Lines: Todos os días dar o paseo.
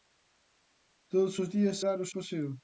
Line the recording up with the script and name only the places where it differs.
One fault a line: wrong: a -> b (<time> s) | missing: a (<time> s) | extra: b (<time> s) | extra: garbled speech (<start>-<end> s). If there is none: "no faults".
no faults